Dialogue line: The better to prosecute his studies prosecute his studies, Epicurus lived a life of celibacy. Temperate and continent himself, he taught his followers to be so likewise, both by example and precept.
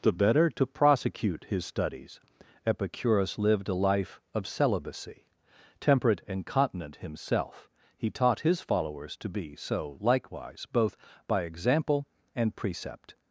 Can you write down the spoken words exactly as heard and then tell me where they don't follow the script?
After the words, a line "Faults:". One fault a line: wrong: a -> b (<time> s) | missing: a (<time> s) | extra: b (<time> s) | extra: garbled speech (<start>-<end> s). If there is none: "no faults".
The better to prosecute his studies, Epicurus lived a life of celibacy. Temperate and continent himself, he taught his followers to be so likewise, both by example and precept.
Faults:
missing: prosecute his studies (2.2 s)